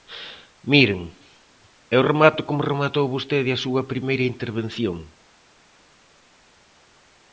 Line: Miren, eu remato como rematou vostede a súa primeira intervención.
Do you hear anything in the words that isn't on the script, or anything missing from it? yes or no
no